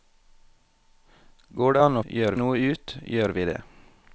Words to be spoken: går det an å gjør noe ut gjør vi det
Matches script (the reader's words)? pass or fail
pass